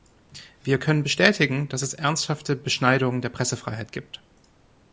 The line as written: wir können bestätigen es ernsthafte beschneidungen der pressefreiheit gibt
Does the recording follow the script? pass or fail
fail